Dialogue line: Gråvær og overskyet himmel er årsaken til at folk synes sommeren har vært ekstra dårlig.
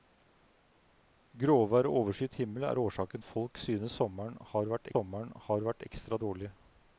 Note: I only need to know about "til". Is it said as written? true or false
false